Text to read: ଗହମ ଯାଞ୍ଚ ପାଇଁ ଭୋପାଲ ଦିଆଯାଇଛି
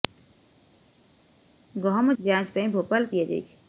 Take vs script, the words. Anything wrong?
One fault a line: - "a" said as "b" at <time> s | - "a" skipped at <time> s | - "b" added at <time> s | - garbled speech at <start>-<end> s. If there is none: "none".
none